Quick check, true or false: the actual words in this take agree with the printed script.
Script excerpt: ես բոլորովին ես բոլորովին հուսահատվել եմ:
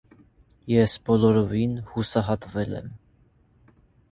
false